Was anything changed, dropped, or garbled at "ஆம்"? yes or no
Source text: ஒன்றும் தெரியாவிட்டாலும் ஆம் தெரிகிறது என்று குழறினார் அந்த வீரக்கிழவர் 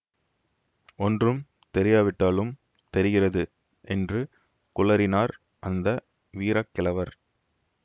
yes